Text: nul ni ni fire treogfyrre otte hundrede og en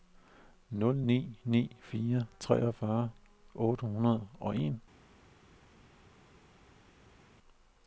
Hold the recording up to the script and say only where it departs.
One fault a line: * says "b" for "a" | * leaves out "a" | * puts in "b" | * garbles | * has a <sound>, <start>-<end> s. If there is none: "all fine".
all fine